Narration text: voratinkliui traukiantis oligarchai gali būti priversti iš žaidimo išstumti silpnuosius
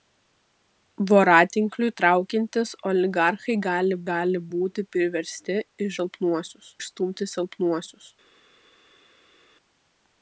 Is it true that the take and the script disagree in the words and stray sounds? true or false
true